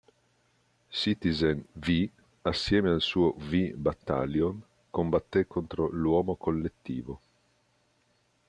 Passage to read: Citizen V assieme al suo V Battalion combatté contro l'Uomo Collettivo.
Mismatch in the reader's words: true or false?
false